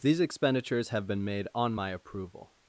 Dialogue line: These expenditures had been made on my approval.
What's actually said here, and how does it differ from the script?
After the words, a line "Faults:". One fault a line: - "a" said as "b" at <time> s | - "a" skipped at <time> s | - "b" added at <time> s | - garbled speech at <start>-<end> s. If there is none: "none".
These expenditures have been made on my approval.
Faults:
- "had" said as "have" at 0.9 s